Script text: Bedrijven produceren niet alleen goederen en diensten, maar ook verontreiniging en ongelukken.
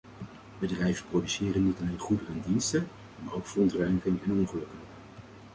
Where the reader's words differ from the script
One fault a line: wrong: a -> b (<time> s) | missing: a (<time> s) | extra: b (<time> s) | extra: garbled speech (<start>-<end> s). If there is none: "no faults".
no faults